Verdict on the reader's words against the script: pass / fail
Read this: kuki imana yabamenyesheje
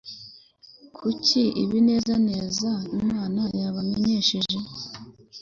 fail